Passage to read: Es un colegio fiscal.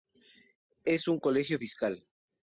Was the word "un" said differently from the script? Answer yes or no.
no